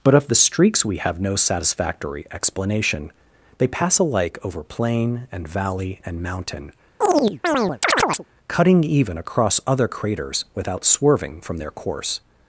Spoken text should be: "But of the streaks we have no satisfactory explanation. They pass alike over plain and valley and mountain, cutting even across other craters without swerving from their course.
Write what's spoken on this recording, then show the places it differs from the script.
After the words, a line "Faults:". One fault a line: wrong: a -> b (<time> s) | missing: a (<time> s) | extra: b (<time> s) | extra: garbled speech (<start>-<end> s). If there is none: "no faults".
"But of the streaks we have no satisfactory explanation. They pass alike over plain and valley and mountain, cutting even across other craters without swerving from their course.
Faults:
no faults